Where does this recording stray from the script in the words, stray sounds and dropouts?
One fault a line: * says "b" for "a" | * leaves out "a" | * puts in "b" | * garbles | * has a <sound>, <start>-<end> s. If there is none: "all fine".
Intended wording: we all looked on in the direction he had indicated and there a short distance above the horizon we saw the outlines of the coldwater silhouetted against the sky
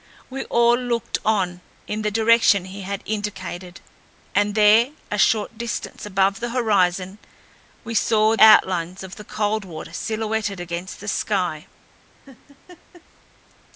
* leaves out "the"
* has a laugh, 12.3-13.1 s